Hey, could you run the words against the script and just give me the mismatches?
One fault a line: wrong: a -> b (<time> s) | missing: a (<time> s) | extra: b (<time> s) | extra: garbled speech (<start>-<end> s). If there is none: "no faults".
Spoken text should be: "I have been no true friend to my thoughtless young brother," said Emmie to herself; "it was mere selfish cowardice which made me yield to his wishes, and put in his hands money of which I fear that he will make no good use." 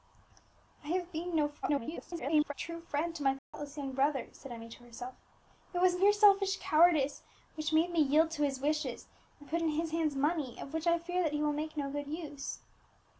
extra: garbled speech (1.6-2.5 s)